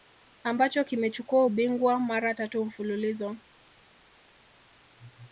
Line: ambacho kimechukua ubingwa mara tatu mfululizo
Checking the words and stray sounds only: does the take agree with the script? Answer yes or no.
yes